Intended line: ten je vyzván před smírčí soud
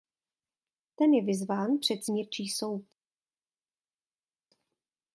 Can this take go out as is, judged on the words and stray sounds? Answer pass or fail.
pass